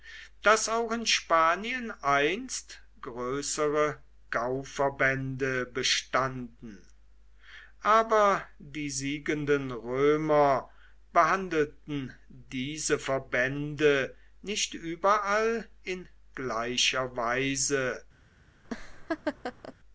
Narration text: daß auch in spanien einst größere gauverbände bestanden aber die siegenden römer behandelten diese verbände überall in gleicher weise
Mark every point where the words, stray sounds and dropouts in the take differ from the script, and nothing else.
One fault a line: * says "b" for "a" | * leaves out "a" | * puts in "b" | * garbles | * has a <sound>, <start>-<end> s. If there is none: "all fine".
* puts in "nicht"
* has a laugh, 18.6-19.7 s